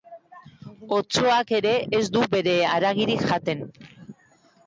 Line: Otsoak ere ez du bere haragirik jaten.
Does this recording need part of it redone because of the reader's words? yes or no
no